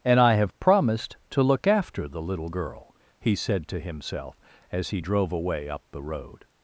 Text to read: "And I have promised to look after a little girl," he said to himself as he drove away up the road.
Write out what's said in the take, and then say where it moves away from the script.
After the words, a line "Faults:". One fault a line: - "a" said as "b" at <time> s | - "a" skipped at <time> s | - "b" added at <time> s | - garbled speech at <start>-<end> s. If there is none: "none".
"And I have promised to look after the little girl," he said to himself as he drove away up the road.
Faults:
- "a" said as "the" at 2.1 s